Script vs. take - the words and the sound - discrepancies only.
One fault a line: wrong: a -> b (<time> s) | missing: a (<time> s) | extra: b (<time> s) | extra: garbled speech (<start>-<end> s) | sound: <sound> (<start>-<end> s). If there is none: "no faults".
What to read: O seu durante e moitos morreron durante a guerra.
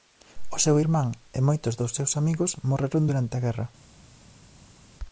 wrong: durante -> irmán (0.8 s)
extra: dos seus amigos (1.8 s)